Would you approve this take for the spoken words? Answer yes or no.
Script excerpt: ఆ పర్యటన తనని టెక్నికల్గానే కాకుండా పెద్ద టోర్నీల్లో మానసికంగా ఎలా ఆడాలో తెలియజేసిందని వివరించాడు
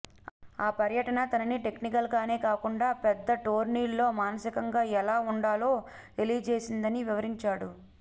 yes